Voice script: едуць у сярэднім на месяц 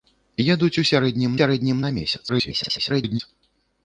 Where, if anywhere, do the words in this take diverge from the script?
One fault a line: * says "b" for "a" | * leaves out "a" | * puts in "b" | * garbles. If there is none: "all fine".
* puts in "сярэднім"
* garbles